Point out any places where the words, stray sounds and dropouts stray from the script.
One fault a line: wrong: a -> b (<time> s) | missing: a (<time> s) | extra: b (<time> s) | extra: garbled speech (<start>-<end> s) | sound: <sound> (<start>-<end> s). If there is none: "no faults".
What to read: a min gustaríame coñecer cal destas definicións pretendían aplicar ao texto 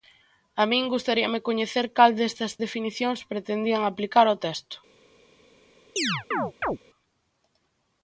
sound: chirp (6.0-6.8 s)